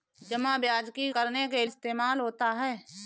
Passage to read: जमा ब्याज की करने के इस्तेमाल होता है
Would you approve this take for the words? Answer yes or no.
yes